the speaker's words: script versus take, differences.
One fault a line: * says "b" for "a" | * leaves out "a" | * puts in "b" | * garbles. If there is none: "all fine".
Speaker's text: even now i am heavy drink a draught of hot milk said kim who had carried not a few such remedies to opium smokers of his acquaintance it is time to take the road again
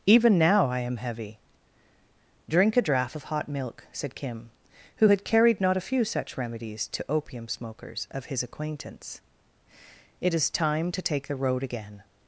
all fine